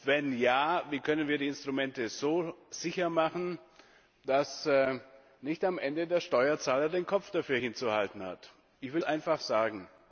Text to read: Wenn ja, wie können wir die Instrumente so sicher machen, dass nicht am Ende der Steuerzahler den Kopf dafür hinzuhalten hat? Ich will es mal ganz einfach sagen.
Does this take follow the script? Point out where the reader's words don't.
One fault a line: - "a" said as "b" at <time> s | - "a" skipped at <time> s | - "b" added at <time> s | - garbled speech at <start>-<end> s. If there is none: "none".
- "es mal ganz" skipped at 9.0 s